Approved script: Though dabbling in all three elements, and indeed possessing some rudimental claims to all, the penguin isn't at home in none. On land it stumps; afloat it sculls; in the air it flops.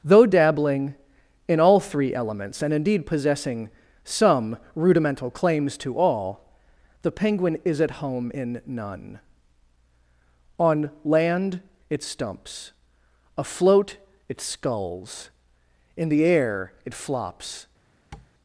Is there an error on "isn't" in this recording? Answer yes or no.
yes